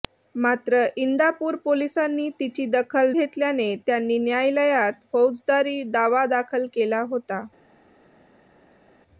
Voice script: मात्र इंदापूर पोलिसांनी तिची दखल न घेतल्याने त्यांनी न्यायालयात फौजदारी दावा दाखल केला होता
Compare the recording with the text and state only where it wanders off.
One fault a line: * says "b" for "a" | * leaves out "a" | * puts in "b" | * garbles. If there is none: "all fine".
* leaves out "न"